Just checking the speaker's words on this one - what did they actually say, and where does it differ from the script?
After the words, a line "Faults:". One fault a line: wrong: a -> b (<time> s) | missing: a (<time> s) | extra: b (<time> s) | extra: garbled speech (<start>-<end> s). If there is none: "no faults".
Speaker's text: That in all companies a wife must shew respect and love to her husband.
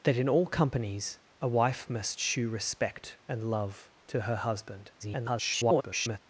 That in all companies a wife must shew respect and love to her husband. [garbled]
Faults:
extra: garbled speech (5.0-6.2 s)